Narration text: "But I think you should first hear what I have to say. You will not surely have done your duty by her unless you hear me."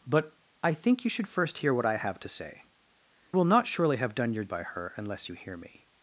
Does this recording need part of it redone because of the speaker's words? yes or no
yes